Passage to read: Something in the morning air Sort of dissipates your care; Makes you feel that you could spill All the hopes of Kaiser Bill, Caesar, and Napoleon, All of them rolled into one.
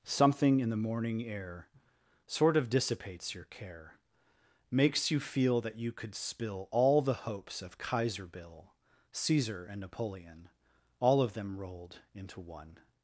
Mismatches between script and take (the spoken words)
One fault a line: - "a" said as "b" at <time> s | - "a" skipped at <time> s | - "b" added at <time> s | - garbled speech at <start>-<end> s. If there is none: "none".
none